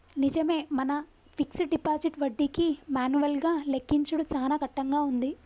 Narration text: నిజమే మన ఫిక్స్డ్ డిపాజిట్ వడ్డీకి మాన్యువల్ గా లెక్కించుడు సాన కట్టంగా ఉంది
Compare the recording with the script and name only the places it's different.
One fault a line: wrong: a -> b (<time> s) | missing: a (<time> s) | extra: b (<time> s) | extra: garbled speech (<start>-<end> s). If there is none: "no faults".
no faults